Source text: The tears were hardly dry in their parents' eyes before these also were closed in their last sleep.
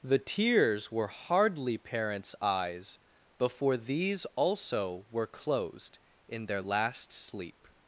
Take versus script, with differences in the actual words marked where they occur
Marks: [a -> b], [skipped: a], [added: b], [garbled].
The tears were hardly [skipped: dry in their] parents' eyes before these also were closed in their last sleep.